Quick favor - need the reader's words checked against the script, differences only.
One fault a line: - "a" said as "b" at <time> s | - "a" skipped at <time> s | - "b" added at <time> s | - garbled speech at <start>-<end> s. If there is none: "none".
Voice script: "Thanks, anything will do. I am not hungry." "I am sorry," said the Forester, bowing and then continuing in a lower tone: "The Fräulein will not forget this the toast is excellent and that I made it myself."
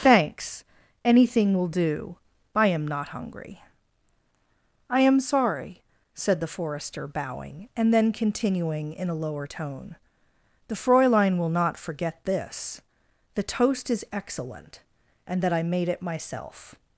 none